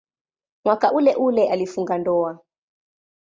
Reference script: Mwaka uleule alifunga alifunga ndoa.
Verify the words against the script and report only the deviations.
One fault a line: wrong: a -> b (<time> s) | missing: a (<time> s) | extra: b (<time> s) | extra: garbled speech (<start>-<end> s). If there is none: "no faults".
missing: alifunga (2.0 s)